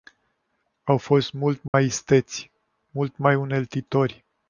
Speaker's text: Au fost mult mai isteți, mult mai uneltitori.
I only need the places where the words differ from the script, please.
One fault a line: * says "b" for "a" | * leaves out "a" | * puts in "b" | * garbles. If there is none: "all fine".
all fine